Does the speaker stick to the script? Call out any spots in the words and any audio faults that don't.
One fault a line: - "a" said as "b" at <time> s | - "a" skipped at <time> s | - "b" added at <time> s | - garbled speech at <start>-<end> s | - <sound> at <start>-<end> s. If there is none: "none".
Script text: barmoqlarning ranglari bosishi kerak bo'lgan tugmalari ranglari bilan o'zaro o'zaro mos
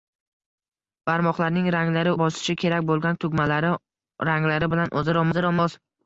none